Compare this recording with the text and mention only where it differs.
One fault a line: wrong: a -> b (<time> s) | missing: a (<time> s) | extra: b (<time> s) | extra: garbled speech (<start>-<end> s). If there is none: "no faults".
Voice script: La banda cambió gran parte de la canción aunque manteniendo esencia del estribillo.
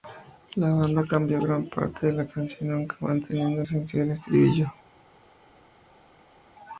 no faults